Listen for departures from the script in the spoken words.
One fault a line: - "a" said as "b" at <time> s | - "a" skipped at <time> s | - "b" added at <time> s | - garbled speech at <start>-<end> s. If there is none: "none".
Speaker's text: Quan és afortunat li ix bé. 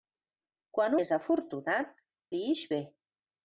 none